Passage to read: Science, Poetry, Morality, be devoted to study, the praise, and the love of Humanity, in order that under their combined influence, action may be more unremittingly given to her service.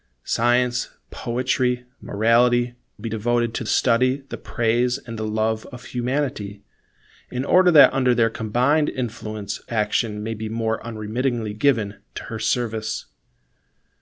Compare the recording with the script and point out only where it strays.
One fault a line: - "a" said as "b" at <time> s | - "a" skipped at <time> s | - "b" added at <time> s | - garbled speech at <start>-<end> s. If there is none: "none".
none